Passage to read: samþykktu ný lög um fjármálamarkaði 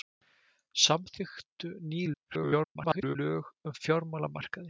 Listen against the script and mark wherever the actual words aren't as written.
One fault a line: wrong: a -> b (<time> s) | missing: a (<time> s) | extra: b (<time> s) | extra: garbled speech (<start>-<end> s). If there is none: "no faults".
extra: garbled speech (2.1-3.2 s)